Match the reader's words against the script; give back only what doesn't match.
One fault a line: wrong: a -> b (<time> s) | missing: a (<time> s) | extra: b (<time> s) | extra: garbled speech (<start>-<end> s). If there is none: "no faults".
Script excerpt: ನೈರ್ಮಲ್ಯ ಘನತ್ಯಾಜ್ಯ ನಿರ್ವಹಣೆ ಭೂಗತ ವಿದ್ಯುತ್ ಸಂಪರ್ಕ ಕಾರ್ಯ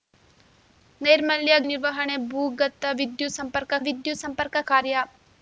missing: ಘನತ್ಯಾಜ್ಯ (1.6 s)
extra: ವಿದ್ಯುತ್ ಸಂಪರ್ಕ (3.8 s)